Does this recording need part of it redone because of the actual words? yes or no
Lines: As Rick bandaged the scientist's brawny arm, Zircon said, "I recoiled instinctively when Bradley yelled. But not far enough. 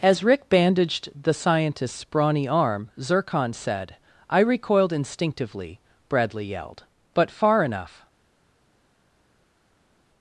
yes